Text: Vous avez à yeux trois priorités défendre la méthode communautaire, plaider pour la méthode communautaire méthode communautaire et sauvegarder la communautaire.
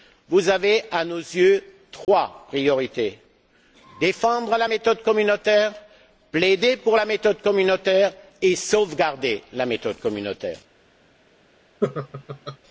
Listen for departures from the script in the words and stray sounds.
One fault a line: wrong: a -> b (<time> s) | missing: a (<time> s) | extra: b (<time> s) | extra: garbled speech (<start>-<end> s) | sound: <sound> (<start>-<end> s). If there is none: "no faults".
extra: nos (1.1 s)
sound: dropout (2.0-2.1 s)
missing: méthode communautaire (8.1 s)
extra: méthode (9.7 s)
sound: laugh (11.8-12.6 s)